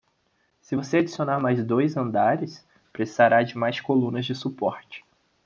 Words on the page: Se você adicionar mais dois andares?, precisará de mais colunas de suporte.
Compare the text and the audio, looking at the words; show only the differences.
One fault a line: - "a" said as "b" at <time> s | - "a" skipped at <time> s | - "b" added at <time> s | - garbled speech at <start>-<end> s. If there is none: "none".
none